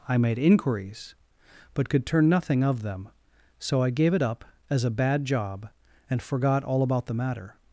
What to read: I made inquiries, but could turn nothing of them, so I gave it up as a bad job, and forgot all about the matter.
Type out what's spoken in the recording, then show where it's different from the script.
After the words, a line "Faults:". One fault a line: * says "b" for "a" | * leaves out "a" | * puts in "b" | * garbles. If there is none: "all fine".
I made inquiries, but could turn nothing of them, so I gave it up as a bad job, and forgot all about the matter.
Faults:
all fine